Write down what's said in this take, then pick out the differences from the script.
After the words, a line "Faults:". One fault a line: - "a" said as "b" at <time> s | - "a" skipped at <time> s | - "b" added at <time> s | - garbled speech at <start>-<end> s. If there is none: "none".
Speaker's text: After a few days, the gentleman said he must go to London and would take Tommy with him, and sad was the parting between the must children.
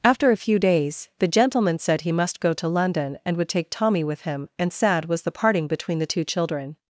After a few days, the gentleman said he must go to London and would take Tommy with him, and sad was the parting between the two children.
Faults:
- "must" said as "two" at 6.0 s